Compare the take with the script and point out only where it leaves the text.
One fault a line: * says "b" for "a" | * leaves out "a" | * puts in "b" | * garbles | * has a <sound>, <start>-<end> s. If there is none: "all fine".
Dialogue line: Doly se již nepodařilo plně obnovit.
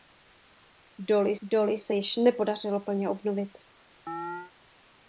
* puts in "doly"
* has a chirp, 4.1-4.5 s